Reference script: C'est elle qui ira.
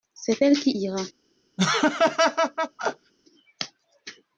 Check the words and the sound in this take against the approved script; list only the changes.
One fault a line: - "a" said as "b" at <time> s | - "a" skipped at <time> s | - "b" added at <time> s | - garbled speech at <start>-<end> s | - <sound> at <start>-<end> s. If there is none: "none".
- laugh at 1.6-3.1 s